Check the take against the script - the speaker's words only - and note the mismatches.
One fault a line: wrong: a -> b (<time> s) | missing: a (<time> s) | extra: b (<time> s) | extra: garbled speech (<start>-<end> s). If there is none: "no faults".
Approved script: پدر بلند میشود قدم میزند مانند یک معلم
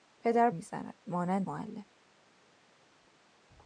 missing: بلند میشود قدم (0.5 s)
missing: یک (1.5 s)